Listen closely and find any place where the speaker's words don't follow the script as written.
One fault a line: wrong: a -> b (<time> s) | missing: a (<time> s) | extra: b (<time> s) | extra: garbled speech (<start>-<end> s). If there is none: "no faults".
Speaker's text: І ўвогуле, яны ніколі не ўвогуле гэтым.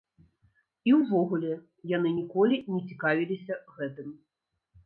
wrong: ўвогуле -> цікавіліся (2.9 s)